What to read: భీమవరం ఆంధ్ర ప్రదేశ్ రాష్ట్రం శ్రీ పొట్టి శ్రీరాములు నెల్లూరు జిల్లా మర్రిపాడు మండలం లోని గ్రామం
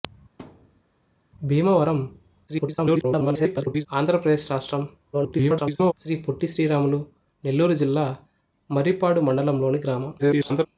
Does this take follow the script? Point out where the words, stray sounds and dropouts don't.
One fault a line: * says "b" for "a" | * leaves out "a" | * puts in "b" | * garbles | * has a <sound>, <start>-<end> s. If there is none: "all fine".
* has a thud, 0.4-0.8 s
* garbles
* garbles
* garbles